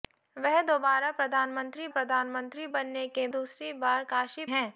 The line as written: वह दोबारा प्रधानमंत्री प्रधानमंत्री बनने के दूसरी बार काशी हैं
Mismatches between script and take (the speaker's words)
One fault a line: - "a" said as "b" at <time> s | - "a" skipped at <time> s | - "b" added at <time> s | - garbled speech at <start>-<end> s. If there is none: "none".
none